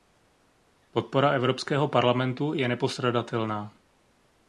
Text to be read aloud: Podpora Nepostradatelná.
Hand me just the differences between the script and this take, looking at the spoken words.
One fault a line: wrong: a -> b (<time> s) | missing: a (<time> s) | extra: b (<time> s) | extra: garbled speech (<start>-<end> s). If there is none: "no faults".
extra: Evropského parlamentu je (1.3 s)